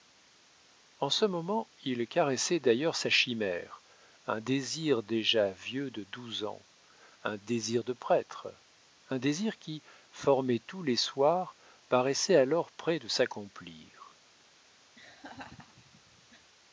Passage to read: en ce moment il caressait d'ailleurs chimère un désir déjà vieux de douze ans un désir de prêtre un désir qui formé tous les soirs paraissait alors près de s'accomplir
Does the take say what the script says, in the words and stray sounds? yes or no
no